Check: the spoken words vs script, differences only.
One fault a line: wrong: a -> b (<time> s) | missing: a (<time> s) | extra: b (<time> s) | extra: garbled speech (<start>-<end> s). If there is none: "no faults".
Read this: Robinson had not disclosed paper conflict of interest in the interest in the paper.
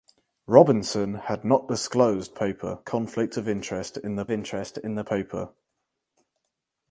no faults